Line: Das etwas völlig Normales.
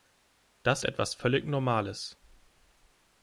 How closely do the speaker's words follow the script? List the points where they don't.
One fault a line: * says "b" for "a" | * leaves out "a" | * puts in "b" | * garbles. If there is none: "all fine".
all fine